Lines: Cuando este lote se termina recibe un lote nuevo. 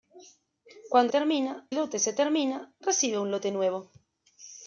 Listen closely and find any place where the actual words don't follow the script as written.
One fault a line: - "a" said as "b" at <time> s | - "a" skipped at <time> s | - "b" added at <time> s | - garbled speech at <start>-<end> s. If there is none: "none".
- "este" said as "termina" at 1.1 s